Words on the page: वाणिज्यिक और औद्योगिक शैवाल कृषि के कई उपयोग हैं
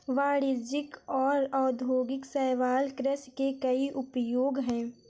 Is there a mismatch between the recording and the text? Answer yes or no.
no